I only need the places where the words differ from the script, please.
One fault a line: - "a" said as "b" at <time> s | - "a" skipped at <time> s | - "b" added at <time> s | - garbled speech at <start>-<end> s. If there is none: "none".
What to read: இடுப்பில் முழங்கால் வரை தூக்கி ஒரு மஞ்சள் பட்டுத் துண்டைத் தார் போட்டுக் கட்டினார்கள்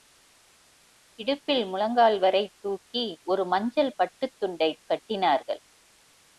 - "தார் போட்டுக்" skipped at 4.8 s